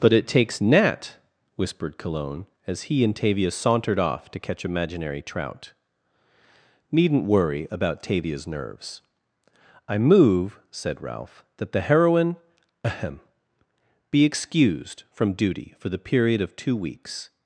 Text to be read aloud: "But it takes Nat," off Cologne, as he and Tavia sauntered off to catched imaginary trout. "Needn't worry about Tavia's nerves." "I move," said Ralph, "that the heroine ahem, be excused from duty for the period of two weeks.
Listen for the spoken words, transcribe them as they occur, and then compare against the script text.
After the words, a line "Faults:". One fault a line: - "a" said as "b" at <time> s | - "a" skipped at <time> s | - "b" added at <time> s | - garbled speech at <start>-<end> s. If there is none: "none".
"But it takes Nat," whispered Cologne, as he and Tavia sauntered off to catch imaginary trout. "Needn't worry about Tavia's nerves." "I move," said Ralph, "that the heroine ahem, be excused from duty for the period of two weeks.
Faults:
- "off" said as "whispered" at 1.6 s
- "catched" said as "catch" at 4.4 s